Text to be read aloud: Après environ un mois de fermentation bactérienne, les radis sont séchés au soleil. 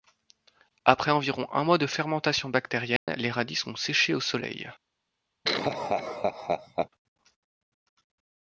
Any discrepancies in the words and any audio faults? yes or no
yes